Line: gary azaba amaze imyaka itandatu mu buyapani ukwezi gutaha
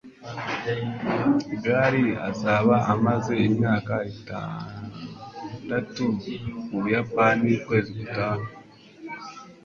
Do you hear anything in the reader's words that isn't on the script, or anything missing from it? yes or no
no